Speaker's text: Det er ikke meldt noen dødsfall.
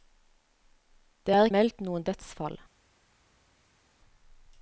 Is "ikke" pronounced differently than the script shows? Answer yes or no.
yes